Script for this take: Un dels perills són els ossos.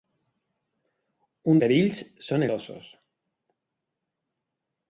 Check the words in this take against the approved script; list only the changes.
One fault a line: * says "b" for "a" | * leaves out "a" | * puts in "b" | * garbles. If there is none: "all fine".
* leaves out "dels"
* leaves out "els"